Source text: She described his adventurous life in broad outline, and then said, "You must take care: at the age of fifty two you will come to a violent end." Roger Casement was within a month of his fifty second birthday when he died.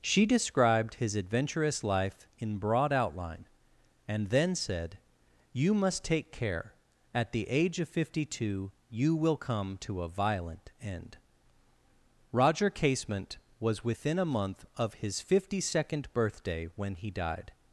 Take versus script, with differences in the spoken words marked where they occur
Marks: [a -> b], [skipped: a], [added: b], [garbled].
She described his adventurous life in broad outline, and then said, "You must take care: at the age of fifty two you will come to a violent end." Roger Casement was within a month of his fifty second birthday when he died.